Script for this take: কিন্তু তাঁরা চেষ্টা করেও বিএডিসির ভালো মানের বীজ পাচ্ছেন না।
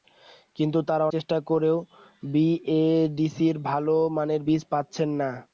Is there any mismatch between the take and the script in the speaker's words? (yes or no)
no